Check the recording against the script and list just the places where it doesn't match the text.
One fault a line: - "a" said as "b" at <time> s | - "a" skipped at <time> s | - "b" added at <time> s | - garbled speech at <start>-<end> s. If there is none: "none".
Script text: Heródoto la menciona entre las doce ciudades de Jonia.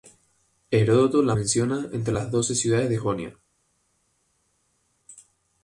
none